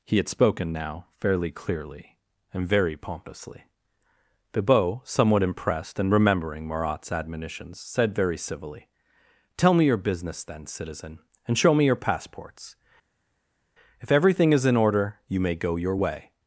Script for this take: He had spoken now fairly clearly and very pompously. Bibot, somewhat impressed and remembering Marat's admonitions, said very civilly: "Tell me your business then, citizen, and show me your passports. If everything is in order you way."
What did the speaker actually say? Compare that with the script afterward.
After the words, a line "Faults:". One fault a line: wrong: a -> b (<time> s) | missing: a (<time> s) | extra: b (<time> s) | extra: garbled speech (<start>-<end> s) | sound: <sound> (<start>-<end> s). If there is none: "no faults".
He had spoken now fairly clearly and very pompously. Bibot, somewhat impressed and remembering Marat's admonitions, said very civilly: "Tell me your business then, citizen, and show me your passports. If everything is in order you may go your way."
Faults:
extra: may go your (15.4 s)